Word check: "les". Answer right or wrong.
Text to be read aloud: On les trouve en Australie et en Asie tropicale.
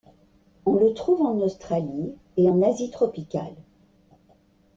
wrong